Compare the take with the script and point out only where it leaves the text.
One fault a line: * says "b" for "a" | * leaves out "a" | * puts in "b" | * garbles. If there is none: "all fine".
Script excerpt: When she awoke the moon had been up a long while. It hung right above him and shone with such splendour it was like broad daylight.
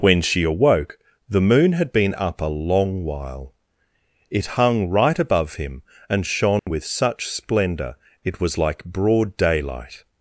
all fine